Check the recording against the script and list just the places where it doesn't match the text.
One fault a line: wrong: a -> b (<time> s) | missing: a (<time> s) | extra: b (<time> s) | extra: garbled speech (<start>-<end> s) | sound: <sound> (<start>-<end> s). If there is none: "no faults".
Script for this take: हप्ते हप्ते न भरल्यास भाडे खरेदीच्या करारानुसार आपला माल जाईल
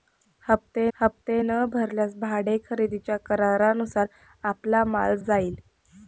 no faults